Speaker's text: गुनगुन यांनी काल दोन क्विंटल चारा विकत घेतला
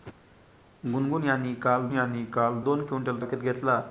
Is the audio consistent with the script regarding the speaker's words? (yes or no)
no